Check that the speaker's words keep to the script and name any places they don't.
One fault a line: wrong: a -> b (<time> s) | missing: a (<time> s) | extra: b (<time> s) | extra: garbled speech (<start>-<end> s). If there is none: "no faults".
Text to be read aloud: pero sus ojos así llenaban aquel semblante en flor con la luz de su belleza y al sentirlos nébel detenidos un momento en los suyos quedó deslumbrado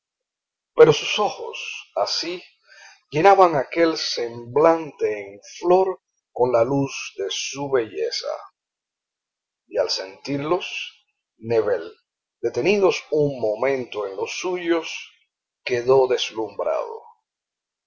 no faults